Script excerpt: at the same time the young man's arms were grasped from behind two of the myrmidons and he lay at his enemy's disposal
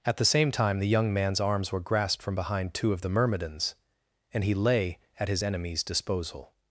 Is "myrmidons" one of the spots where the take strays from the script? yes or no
no